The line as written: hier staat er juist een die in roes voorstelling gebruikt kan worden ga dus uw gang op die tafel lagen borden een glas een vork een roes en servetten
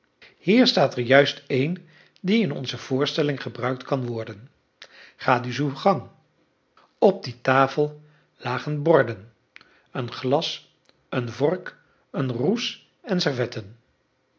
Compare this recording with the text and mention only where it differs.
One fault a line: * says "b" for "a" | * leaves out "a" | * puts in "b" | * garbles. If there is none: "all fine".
* says "onze" for "roes"